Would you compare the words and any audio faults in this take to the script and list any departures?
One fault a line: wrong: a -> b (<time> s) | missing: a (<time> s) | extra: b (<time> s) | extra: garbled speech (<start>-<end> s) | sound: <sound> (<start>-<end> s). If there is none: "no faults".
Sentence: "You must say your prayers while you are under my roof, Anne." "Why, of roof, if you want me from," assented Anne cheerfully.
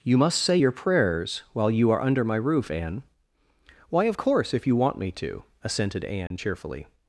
wrong: roof -> course (4.1 s)
wrong: from -> to (5.1 s)
sound: dropout (6.3-6.3 s)